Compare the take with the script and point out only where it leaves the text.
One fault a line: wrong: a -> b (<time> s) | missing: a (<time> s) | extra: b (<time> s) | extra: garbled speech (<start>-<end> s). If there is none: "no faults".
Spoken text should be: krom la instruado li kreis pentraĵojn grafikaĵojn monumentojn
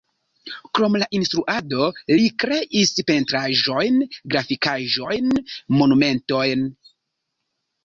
no faults